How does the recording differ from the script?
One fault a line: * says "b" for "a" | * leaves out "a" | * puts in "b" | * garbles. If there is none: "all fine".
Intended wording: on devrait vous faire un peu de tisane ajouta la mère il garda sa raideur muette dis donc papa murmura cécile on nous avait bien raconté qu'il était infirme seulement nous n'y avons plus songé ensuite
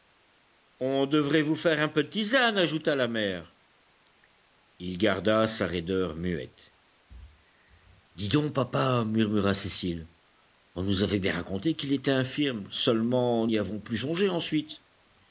* leaves out "nous"